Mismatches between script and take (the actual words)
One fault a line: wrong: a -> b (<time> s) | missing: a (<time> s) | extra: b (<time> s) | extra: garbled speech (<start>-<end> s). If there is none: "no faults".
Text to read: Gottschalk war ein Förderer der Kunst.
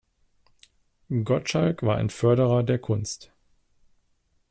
no faults